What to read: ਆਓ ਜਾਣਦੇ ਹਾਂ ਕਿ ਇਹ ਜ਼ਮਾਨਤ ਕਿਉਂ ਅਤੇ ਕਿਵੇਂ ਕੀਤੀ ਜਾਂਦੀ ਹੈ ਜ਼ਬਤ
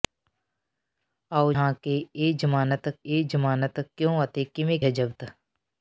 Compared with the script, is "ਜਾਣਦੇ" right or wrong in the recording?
wrong